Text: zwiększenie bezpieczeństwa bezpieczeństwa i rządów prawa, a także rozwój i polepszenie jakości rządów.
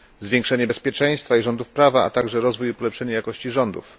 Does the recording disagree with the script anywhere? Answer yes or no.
yes